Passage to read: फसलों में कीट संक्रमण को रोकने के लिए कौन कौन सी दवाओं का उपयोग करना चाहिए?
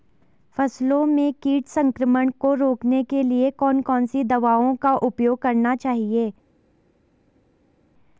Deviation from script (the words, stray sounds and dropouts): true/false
false